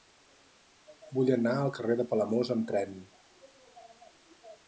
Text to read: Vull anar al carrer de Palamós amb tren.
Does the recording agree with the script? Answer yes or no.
yes